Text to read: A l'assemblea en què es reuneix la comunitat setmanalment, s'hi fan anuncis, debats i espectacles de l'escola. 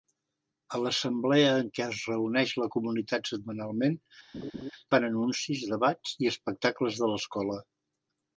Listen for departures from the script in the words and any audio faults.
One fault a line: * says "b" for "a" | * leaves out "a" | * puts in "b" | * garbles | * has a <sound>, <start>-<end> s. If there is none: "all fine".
* leaves out "s'hi"
* has a laugh, 4.3-4.7 s